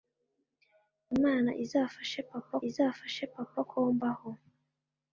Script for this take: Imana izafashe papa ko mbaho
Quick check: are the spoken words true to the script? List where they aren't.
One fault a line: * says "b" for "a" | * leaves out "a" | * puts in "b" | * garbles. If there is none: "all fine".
* puts in "izafashe papa"